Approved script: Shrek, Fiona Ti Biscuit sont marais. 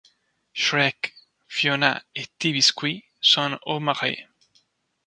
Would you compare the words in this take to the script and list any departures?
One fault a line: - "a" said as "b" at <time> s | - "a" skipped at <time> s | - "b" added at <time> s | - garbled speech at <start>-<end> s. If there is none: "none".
- "et" added at 2.1 s
- "au" added at 3.7 s